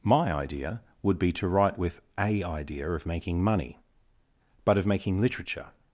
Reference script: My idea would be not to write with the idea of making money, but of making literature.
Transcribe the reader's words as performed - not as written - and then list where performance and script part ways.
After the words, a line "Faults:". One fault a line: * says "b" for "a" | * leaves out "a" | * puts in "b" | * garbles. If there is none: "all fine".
My idea would be to write with a idea of making money, but of making literature.
Faults:
* leaves out "not"
* says "a" for "the"